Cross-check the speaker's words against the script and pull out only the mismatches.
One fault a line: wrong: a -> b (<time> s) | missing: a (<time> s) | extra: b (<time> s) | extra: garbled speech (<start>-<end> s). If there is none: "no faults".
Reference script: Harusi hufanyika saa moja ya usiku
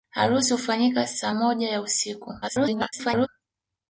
extra: garbled speech (2.4-3.3 s)